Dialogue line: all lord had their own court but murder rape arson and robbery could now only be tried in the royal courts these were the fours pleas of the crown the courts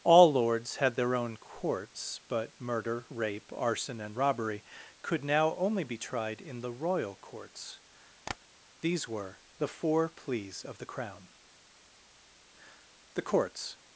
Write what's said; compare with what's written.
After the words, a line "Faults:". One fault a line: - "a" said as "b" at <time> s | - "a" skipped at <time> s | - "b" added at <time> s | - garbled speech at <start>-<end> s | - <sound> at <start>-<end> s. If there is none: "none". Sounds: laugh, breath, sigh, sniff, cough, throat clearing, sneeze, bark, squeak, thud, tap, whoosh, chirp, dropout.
all lords had their own courts but murder rape arson and robbery could now only be tried in the royal courts these were the four pleas of the crown the courts
Faults:
- "lord" said as "lords" at 0.3 s
- "court" said as "courts" at 1.4 s
- tap at 8.3-8.4 s
- "fours" said as "four" at 9.7 s